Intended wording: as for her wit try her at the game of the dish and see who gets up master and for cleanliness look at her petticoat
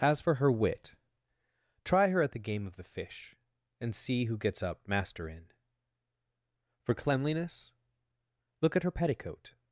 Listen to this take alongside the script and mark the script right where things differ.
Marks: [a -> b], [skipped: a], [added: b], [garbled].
as for her wit try her at the game of the [dish -> fish] and see who gets up master [and -> in] for cleanliness look at her petticoat